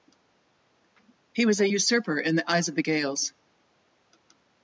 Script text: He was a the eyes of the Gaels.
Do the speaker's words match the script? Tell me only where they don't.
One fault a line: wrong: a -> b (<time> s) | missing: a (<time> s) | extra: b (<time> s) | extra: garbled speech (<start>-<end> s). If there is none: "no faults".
extra: usurper in (1.7 s)